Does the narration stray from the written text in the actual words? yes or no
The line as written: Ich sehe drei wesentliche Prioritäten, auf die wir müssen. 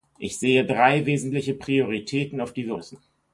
no